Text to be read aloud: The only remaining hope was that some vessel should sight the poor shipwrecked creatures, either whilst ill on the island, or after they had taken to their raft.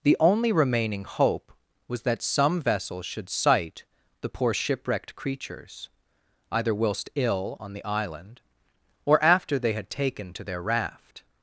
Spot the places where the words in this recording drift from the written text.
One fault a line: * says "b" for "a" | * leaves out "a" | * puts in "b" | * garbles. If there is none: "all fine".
all fine